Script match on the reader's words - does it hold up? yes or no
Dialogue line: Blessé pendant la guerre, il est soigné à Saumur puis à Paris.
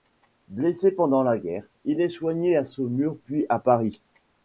yes